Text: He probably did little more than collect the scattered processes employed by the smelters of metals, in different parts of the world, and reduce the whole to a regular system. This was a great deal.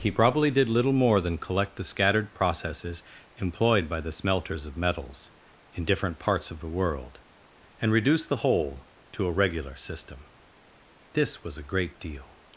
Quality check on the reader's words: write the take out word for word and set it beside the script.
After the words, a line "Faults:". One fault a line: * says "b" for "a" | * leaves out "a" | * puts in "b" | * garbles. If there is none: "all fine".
He probably did little more than collect the scattered processes employed by the smelters of metals, in different parts of the world, and reduce the whole to a regular system. This was a great deal.
Faults:
all fine